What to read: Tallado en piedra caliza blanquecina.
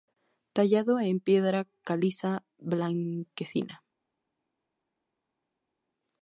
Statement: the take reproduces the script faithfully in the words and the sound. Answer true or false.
true